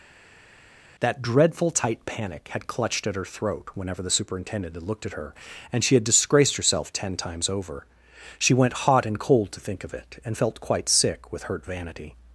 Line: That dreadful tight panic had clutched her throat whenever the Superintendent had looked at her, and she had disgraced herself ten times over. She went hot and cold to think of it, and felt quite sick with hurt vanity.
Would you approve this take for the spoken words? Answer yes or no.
no